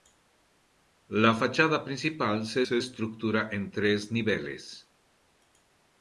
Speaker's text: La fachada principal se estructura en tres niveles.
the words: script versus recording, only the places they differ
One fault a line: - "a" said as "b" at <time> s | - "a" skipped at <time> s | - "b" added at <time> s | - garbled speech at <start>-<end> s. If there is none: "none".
- "se" added at 2.6 s